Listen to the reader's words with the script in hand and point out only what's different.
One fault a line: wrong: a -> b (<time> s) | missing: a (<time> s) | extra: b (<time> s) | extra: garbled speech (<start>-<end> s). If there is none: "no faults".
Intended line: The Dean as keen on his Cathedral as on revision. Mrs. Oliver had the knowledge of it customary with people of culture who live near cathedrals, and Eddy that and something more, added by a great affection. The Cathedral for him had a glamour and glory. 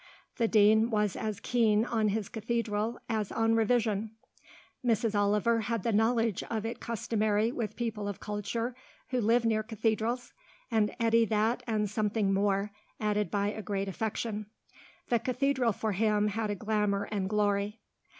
extra: was (0.9 s)